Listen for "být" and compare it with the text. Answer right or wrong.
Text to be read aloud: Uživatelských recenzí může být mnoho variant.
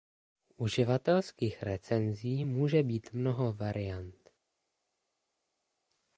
right